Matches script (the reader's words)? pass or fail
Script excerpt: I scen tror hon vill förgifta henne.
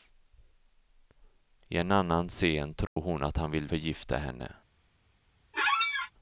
fail